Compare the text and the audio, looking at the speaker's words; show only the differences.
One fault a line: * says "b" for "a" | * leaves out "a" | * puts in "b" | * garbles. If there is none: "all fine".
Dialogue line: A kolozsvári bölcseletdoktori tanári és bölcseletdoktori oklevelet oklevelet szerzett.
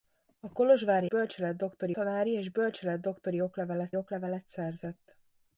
all fine